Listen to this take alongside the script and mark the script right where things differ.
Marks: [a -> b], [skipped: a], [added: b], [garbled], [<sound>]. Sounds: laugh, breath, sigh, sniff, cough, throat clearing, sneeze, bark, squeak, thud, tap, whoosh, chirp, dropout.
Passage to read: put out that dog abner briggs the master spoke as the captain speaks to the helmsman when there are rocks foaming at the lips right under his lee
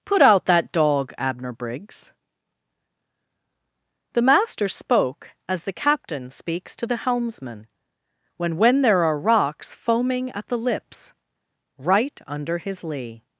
put out that dog abner briggs the master spoke as the captain speaks to the helmsman when [added: when] there are rocks foaming at the lips right under his lee